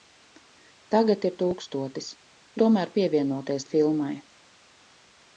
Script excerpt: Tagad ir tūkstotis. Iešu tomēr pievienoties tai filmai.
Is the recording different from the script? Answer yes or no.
yes